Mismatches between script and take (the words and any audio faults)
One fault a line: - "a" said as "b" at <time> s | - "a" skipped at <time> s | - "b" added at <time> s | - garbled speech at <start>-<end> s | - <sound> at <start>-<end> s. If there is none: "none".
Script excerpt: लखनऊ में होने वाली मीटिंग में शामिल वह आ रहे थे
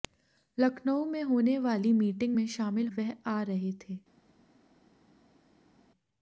none